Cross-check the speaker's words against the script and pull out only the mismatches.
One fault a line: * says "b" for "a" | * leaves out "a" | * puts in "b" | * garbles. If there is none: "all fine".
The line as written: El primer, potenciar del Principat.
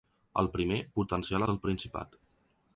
all fine